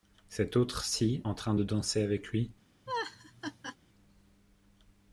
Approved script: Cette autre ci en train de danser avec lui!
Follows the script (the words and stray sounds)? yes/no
no